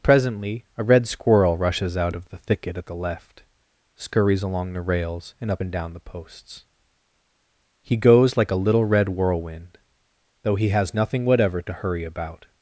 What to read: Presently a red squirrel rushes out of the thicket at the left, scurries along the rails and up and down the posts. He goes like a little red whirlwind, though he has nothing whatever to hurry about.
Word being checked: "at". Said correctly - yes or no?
yes